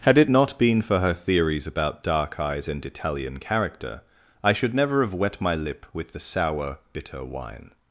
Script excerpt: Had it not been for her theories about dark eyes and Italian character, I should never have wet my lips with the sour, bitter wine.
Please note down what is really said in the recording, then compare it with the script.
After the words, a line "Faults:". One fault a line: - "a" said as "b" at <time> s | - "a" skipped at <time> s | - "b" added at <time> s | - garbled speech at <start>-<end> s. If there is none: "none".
Had it not been for her theories about dark eyes and Italian character, I should never have wet my lip with the sour, bitter wine.
Faults:
- "lips" said as "lip" at 5.5 s